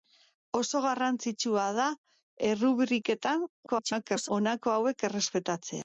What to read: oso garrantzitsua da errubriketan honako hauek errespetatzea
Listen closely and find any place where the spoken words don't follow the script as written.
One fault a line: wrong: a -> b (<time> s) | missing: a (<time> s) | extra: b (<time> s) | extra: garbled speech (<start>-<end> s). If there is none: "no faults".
extra: garbled speech (3.7-4.3 s)